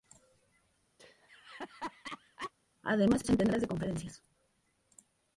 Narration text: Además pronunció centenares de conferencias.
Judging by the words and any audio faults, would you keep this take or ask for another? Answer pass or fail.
fail